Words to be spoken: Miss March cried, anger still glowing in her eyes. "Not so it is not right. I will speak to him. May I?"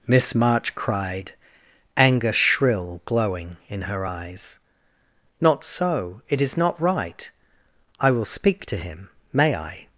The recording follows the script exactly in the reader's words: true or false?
false